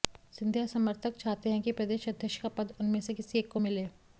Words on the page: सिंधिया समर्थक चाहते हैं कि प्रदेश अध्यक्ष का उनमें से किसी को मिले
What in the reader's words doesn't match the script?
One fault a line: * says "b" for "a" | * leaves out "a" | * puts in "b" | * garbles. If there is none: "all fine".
* puts in "पद"
* puts in "एक"